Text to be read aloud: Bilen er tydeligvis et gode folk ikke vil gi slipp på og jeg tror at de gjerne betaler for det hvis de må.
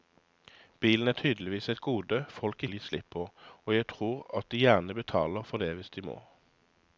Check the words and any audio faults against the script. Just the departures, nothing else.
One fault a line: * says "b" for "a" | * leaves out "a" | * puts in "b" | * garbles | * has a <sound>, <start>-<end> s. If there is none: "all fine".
* leaves out "ikke"